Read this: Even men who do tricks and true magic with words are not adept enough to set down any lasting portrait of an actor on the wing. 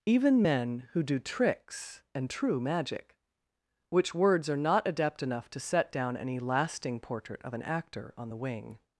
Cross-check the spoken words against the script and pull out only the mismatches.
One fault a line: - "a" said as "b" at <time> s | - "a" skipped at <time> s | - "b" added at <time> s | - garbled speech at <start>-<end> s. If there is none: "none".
- "with" said as "which" at 3.9 s